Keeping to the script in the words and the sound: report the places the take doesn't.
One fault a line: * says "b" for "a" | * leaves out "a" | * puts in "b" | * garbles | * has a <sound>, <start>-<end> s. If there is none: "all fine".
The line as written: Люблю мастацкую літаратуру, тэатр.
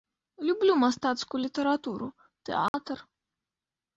* has a dropout, 2.7-2.7 s